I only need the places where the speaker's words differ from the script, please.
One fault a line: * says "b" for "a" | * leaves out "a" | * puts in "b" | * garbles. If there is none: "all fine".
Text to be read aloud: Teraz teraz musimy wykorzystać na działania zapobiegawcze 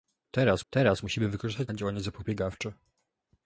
all fine